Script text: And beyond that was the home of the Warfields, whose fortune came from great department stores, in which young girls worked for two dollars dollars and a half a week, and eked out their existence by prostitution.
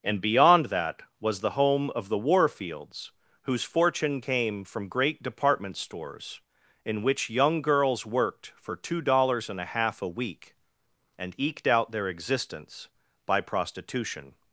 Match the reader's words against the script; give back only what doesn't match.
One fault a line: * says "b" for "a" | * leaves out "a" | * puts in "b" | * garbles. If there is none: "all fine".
* leaves out "dollars"